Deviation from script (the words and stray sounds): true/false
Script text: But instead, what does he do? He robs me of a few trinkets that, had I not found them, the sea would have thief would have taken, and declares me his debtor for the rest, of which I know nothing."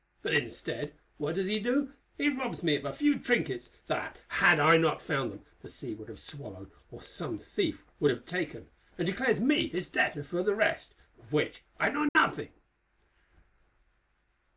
true